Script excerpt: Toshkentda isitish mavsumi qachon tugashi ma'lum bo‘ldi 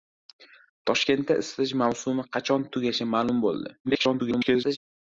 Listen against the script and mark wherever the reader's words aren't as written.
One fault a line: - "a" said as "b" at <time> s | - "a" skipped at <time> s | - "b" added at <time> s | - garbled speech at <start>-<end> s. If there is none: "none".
- garbled speech at 3.8-4.8 s